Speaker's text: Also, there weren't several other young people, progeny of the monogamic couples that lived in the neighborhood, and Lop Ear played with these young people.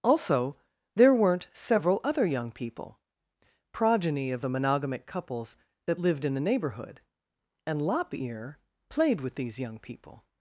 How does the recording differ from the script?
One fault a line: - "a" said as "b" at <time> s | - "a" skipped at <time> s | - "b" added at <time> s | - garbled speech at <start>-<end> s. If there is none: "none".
none